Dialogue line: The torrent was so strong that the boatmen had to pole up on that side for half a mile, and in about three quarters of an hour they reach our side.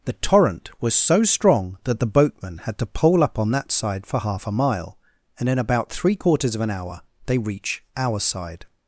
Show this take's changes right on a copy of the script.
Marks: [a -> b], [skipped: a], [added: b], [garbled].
The torrent was so strong that the boatmen had to pole up on that side for half a mile, and in about three quarters of an hour they reach our side.